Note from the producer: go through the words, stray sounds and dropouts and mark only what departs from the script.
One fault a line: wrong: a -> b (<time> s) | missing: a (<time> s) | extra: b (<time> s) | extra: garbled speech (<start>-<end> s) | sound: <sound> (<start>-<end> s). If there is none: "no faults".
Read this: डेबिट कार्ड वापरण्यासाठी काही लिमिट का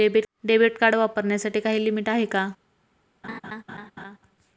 extra: आहे (2.1 s)
sound: laugh (3.2-4.2 s)